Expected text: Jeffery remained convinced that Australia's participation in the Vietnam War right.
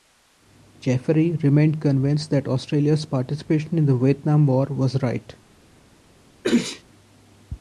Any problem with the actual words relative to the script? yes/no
yes